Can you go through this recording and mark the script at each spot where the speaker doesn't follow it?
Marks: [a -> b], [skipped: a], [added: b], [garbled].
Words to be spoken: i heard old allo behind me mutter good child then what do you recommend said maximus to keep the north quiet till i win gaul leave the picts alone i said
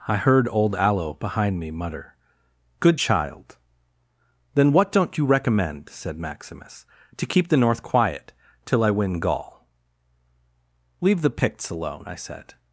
i heard old allo behind me mutter good child then what [do -> don't] you recommend said maximus to keep the north quiet till i win gaul leave the picts alone i said